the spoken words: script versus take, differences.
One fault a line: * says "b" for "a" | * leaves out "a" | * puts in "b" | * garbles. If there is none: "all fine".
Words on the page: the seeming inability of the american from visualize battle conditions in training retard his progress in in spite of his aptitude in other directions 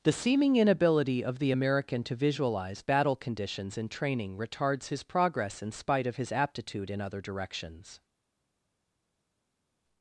* says "to" for "from"
* says "retards" for "retard"
* leaves out "in"